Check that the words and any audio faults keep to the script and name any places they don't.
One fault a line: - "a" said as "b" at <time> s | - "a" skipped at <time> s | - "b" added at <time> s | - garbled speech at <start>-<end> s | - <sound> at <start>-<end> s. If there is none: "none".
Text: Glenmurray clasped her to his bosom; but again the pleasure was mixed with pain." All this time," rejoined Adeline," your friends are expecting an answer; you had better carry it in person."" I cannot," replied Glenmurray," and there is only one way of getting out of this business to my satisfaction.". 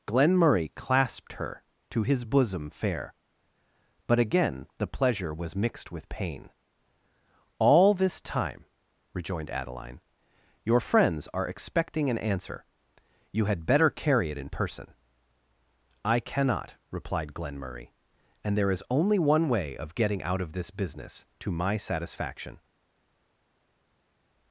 - "fair" added at 2.7 s